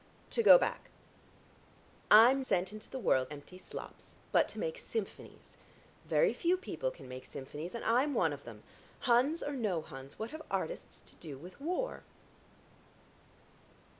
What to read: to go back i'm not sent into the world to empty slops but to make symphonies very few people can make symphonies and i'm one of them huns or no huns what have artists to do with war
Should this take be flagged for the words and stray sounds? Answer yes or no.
yes